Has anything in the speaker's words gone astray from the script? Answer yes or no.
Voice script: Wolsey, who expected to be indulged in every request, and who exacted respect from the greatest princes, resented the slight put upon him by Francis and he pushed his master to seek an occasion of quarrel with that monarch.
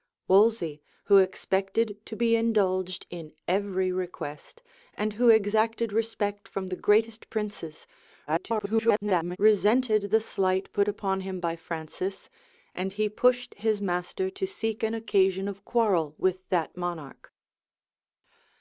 yes